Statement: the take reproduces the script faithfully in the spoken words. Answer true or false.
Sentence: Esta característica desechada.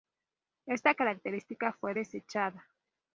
false